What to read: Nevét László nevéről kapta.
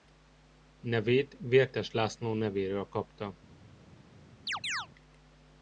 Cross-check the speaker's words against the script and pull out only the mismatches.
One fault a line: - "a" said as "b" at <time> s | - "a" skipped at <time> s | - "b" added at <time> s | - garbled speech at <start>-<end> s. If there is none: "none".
- "Vértes" added at 1.4 s